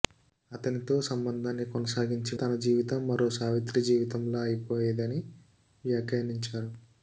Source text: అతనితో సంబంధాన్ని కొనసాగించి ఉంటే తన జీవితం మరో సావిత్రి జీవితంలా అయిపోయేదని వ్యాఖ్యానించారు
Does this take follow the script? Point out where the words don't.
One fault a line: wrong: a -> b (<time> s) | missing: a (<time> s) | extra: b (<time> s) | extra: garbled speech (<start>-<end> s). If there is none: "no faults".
missing: ఉంటే (2.3 s)